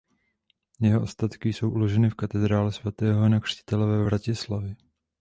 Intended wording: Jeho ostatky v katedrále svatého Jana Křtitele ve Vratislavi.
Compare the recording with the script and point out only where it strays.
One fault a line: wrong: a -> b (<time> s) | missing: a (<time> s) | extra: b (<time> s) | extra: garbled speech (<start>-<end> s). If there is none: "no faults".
extra: jsou uloženy (1.5 s)